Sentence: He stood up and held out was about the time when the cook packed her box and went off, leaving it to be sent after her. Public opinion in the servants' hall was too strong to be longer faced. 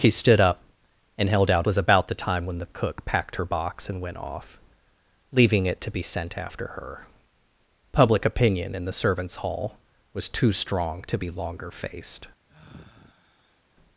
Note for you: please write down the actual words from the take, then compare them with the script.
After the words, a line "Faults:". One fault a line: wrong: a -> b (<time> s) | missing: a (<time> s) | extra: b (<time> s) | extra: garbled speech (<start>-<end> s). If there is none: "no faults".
He stood up and held out was about the time when the cook packed her box and went off, leaving it to be sent after her. Public opinion in the servants' hall was too strong to be longer faced.
Faults:
no faults